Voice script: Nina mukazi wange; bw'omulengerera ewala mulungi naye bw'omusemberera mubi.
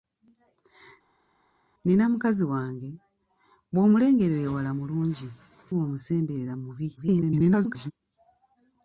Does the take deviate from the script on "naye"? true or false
true